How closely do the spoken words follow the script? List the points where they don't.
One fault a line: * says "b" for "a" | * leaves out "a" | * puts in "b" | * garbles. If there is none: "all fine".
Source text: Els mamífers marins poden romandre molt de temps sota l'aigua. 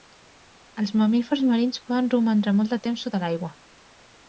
all fine